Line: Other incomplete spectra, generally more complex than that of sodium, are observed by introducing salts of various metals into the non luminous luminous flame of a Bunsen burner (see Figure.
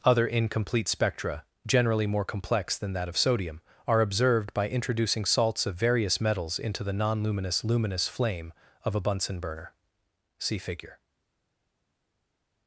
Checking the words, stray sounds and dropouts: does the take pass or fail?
pass